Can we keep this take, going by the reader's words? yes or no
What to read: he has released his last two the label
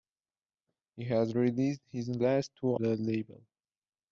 yes